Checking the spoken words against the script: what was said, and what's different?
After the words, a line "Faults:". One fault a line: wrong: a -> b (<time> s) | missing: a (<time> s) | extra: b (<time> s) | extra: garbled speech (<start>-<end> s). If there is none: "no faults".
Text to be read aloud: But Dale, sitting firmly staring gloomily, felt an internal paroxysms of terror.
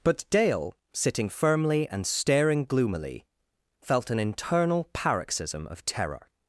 But Dale, sitting firmly and staring gloomily, felt an internal paroxysm of terror.
Faults:
extra: and (1.9 s)
wrong: paroxysms -> paroxysm (4.9 s)